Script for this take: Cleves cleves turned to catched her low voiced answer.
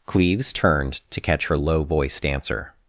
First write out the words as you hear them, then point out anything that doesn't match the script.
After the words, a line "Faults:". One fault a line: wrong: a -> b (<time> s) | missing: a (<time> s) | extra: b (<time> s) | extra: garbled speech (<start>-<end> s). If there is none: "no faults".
Cleves turned to catch her low voiced answer.
Faults:
missing: cleves (0.5 s)
wrong: catched -> catch (1.2 s)